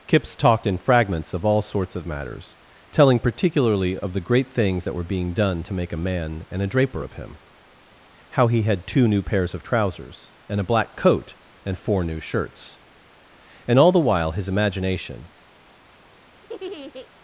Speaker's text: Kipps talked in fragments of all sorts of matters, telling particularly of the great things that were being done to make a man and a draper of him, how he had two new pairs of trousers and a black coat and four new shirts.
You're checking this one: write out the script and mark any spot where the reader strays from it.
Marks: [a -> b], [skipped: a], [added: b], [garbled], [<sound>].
Kipps talked in fragments of all sorts of matters, telling particularly of the great things that were being done to make a man and a draper of him, how he had two new pairs of trousers and a black coat and four new shirts. [added: And all the while his imagination] [laugh]